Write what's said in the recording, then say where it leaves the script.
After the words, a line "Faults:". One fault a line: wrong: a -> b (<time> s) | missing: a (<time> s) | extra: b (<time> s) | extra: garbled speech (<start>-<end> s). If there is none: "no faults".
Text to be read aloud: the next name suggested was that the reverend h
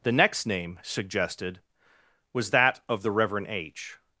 the next name suggested was that of the reverend h
Faults:
extra: of (2.9 s)